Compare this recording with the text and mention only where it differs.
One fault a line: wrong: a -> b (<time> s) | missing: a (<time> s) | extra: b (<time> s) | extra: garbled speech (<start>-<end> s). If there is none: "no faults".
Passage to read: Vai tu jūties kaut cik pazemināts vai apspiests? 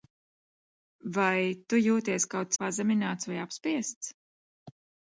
missing: cik (2.6 s)